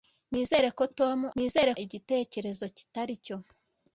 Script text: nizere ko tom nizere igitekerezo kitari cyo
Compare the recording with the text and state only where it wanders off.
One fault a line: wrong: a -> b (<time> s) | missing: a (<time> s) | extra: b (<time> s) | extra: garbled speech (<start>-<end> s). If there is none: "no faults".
no faults